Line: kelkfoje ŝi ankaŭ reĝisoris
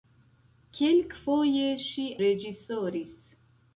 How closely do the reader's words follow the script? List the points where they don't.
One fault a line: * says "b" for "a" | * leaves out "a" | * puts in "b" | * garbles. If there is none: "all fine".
* leaves out "ankaŭ"